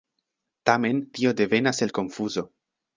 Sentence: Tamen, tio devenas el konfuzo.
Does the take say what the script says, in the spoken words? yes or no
yes